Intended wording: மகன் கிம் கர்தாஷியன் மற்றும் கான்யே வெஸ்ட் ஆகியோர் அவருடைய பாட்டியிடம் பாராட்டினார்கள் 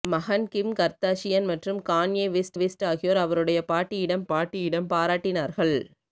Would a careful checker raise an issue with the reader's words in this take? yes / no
yes